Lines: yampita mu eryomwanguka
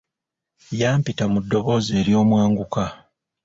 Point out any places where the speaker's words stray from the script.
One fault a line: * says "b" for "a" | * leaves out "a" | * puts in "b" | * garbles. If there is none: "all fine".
* puts in "ddoboozi"